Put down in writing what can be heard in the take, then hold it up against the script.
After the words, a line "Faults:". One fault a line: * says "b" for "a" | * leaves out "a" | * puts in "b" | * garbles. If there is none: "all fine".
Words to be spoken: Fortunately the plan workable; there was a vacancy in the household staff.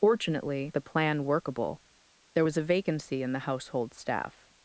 Fortunately the plan workable; there was a vacancy in the household staff.
Faults:
all fine